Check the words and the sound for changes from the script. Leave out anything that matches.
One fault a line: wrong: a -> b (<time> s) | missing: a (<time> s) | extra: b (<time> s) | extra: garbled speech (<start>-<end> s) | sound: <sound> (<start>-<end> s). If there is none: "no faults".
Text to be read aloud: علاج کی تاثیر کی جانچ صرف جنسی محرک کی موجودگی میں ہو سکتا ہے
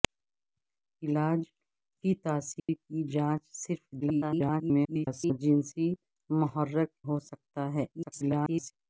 sound: dropout (2.6-2.7 s)
extra: garbled speech (4.0-5.4 s)
missing: کی موجودگی میں (6.9 s)
extra: garbled speech (7.9-8.7 s)